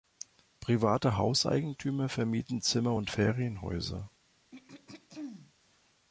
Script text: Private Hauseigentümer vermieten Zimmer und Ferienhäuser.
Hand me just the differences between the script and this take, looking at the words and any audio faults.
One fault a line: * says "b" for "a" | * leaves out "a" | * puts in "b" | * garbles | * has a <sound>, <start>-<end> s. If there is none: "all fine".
* has a throat clearing, 4.5-5.5 s